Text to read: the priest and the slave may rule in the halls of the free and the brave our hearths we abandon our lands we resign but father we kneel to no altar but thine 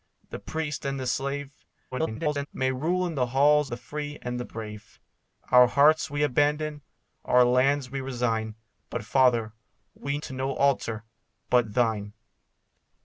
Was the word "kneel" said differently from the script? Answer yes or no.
yes